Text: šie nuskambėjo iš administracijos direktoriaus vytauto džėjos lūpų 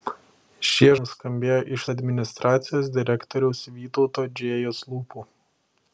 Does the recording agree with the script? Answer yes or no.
yes